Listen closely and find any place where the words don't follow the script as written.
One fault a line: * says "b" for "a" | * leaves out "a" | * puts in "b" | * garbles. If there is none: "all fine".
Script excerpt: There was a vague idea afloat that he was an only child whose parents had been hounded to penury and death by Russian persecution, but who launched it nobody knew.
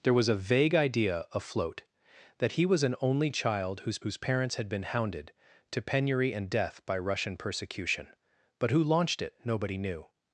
* puts in "whose"